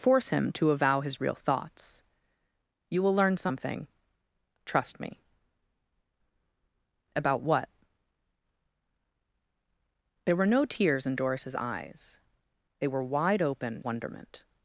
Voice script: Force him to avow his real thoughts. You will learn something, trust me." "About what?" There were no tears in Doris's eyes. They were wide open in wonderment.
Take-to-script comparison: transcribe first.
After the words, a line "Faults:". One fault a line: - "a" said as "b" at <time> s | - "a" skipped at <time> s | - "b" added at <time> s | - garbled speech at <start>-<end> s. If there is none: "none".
Force him to avow his real thoughts. You will learn something, trust me." "About what?" There were no tears in Doris's eyes. They were wide open wonderment.
Faults:
- "in" skipped at 13.8 s